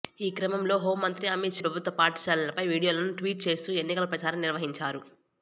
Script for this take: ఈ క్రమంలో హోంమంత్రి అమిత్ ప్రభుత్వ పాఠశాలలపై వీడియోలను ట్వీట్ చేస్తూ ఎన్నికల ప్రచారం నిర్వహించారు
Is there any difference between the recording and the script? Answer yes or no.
no